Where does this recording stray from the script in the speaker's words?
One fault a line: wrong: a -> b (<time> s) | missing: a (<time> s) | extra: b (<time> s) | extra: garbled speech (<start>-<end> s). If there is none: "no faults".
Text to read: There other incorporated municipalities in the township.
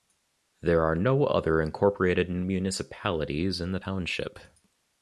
extra: are no (0.8 s)